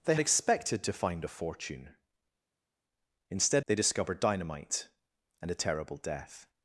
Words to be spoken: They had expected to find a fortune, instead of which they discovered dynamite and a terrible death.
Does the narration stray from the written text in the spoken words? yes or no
yes